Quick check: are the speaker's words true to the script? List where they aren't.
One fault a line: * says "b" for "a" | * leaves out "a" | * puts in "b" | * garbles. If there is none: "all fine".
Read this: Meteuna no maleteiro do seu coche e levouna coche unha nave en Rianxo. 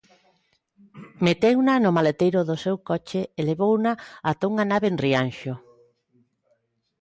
* says "ata" for "coche"